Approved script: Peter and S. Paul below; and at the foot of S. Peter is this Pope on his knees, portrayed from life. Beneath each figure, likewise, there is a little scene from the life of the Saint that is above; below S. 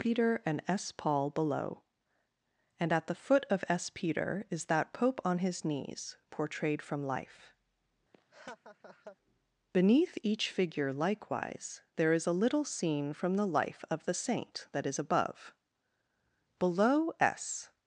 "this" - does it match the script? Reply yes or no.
no